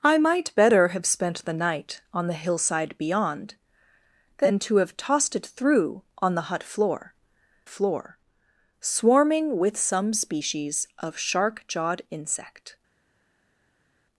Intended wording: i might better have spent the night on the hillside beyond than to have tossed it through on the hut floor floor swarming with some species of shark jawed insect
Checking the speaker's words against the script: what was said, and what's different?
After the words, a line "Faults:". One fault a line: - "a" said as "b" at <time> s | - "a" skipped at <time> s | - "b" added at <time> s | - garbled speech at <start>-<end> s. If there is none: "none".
i might better have spent the night on the hillside beyond than to have tossed it through on the hut floor floor swarming with some species of shark jawed insect
Faults:
none